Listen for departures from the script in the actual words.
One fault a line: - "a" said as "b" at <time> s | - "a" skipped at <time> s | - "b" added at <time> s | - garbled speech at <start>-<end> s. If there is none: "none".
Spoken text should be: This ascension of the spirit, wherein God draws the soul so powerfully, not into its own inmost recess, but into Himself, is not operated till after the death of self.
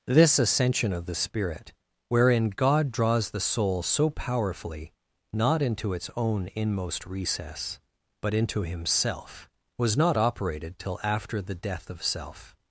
- "is" said as "was" at 9.8 s